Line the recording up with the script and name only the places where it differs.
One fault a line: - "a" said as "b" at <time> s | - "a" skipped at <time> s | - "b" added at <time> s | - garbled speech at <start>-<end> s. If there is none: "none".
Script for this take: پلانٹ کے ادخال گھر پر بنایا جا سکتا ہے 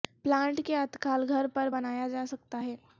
none